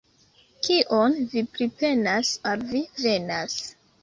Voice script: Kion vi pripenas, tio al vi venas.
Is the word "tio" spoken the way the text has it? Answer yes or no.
no